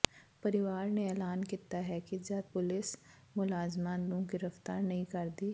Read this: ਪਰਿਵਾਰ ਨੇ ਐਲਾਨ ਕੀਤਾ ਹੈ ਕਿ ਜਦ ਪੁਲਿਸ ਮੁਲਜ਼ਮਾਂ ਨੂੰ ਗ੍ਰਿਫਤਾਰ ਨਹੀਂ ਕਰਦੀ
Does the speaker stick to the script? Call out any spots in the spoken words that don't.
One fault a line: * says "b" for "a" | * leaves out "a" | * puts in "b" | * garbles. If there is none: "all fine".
all fine